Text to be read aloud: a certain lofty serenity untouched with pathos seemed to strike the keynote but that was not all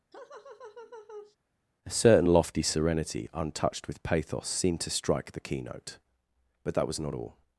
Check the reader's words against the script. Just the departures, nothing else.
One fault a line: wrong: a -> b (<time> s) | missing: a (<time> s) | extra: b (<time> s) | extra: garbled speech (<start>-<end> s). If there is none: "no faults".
no faults